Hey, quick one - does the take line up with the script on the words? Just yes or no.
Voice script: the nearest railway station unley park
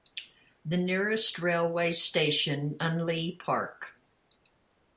yes